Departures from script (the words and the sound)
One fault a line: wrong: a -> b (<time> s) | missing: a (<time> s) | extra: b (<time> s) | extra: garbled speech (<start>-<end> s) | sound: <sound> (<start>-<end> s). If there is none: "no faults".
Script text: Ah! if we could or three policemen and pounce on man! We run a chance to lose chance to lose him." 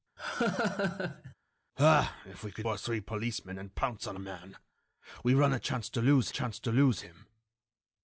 sound: laugh (0.2-1.3 s)